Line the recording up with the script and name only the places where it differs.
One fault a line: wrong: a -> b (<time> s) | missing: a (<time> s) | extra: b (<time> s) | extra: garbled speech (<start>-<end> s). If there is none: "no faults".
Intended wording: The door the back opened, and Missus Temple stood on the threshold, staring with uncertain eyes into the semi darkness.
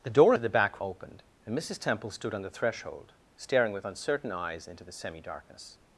no faults